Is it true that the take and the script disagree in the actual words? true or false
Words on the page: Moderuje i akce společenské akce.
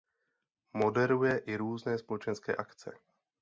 true